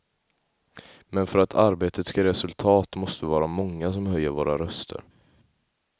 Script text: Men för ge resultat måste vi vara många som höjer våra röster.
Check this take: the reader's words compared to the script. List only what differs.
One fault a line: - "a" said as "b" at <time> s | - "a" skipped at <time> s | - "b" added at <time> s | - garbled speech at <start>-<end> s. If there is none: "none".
- "att arbetet ska" added at 1.4 s